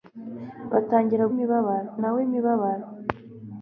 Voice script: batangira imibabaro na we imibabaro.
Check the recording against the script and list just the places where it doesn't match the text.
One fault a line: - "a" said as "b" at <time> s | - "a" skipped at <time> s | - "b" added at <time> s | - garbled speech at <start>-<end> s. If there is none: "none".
none